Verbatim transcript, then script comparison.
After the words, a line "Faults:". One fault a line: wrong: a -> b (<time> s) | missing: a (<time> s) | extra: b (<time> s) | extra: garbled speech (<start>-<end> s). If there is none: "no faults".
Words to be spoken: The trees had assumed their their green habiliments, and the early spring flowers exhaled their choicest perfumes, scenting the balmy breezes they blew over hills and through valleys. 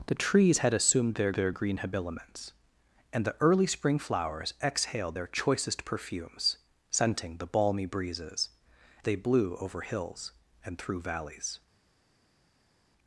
The trees had assumed their their green habiliments, and the early spring flowers exhaled their choicest perfumes, scenting the balmy breezes they blew over hills and through valleys.
Faults:
no faults